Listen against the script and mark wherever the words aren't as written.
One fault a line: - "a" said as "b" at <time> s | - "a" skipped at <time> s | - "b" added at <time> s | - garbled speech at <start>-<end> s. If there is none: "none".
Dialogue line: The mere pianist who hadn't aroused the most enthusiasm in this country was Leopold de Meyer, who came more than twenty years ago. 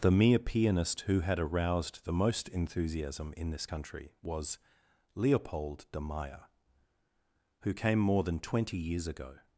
- "hadn't" said as "had" at 1.2 s